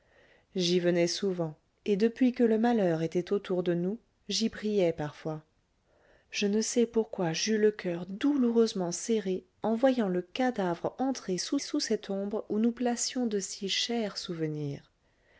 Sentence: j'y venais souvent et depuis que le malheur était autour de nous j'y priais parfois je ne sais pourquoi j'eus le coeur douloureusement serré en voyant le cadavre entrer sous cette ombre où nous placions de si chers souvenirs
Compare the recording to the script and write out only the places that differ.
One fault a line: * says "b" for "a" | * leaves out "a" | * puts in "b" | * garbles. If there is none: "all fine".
* puts in "sous"